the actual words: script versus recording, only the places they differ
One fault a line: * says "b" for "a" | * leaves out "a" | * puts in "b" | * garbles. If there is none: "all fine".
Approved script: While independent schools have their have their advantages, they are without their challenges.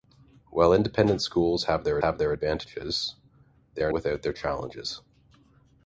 all fine